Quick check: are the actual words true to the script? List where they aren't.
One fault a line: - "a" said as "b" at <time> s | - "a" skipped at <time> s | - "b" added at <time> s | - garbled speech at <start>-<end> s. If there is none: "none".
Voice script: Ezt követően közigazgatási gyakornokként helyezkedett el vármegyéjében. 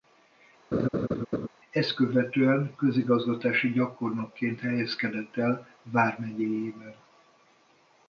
none